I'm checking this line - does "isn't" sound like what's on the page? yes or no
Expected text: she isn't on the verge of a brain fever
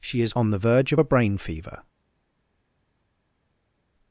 no